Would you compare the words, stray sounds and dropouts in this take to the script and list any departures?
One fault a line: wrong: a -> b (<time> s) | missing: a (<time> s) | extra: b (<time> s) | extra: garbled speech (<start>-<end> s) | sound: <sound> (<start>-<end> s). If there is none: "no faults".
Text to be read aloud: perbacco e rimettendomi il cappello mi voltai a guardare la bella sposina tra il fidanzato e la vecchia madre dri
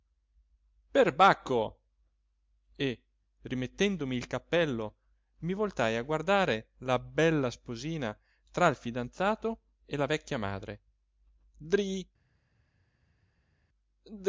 no faults